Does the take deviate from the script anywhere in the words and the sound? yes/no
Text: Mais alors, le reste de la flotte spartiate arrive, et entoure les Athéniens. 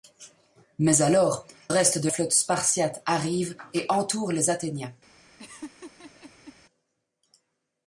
yes